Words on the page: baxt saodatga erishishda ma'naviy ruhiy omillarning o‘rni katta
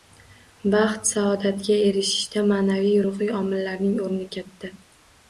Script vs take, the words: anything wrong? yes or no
no